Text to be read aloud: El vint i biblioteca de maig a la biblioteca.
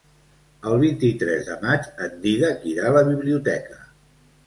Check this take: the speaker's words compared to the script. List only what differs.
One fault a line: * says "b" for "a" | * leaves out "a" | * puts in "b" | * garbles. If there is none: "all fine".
* says "tres" for "biblioteca"
* puts in "en Dídac irà"